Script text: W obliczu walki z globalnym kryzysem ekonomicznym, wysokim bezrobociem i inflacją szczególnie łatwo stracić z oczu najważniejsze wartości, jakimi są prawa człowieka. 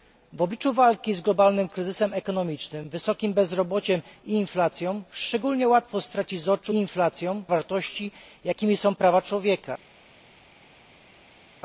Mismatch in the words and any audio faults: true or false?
true